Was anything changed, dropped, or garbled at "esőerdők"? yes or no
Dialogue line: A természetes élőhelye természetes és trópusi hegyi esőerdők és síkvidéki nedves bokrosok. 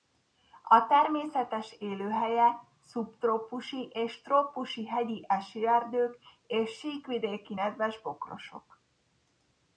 no